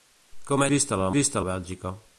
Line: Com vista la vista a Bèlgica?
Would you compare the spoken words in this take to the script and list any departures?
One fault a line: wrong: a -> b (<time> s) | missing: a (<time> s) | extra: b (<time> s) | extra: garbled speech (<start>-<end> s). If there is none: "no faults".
no faults